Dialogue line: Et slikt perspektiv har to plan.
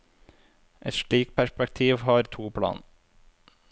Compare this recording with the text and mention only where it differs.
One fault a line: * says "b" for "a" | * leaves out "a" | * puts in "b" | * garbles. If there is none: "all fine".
all fine